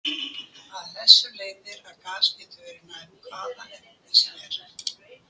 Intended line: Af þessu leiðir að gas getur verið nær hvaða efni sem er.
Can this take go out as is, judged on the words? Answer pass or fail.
pass